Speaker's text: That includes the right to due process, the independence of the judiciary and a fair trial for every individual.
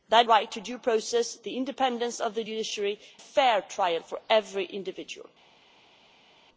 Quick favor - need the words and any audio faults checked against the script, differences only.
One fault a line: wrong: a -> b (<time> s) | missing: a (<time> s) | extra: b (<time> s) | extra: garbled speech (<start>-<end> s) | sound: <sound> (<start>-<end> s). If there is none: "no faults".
missing: includes the (0.3 s)
missing: and (3.0 s)